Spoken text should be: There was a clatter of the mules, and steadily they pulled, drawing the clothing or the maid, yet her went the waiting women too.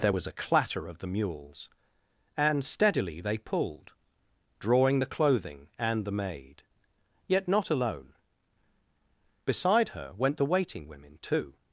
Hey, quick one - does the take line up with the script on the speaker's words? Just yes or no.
no